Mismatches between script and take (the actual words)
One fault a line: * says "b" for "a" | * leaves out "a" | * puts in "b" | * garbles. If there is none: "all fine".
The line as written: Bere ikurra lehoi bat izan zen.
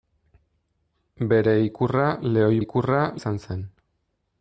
* says "ikurra" for "bat"